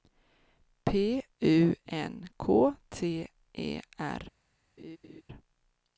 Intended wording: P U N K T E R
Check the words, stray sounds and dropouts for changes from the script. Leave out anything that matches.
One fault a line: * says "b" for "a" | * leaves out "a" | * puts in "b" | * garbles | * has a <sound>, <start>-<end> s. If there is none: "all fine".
* has a laugh, 4.8-5.2 s